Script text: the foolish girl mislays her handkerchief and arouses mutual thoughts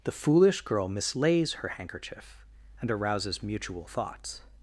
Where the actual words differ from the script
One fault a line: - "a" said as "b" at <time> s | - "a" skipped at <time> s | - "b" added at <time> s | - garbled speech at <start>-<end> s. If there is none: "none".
none